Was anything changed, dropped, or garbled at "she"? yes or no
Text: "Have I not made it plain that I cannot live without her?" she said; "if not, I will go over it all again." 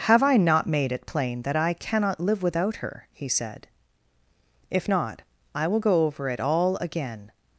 yes